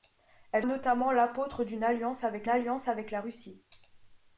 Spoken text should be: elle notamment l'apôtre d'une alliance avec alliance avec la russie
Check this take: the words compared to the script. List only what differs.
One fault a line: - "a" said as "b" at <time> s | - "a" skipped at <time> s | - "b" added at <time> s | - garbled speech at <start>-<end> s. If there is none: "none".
none